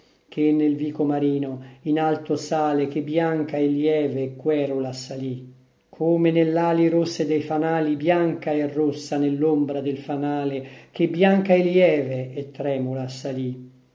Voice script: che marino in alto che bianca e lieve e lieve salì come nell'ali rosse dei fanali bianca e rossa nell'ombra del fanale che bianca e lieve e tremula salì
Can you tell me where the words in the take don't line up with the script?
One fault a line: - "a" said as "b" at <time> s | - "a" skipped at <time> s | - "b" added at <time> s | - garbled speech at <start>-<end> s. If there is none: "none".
- "nel vico" added at 0.5 s
- "sale" added at 2.4 s
- "lieve" said as "querula" at 4.3 s